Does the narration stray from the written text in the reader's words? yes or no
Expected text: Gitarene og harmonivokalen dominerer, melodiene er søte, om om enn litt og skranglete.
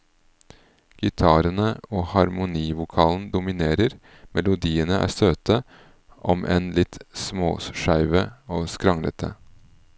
yes